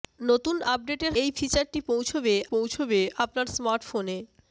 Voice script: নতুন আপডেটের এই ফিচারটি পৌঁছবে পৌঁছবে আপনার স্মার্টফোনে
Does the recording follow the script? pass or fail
pass